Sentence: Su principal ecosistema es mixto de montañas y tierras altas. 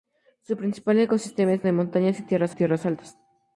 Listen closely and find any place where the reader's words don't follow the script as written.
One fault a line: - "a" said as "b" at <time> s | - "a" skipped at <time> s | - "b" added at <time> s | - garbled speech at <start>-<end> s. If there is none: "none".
- "mixto" skipped at 1.7 s
- "tierras" added at 2.5 s